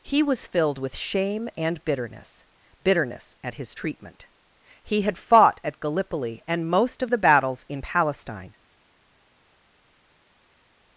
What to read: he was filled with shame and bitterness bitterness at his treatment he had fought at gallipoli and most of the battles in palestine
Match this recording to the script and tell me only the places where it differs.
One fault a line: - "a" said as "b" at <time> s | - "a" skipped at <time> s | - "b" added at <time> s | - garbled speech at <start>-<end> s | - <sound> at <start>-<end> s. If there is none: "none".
none